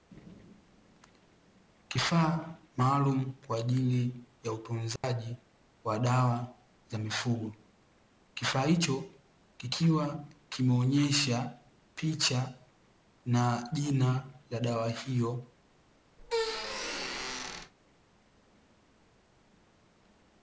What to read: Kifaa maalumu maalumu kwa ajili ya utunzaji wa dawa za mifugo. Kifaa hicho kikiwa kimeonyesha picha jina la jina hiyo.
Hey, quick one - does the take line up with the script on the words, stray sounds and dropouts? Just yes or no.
no